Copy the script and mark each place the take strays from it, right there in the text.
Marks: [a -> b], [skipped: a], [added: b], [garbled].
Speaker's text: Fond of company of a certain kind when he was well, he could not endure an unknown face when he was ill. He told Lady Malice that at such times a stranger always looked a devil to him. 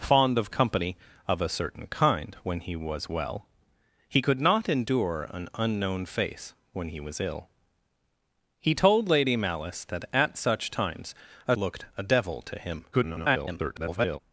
Fond of company of a certain kind when he was well, he could not endure an unknown face when he was ill. He told Lady Malice that at such times a [skipped: stranger always] looked a devil to him. [garbled]